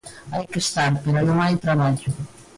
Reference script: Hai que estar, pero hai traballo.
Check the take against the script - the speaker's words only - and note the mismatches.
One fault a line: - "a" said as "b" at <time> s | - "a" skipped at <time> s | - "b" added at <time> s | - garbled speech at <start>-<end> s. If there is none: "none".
- "non" added at 1.3 s